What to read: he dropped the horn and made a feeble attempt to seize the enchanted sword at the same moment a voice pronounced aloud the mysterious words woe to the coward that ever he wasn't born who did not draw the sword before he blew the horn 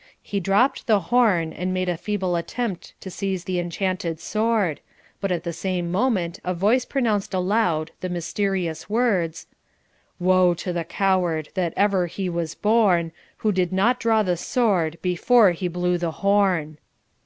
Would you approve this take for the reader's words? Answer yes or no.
no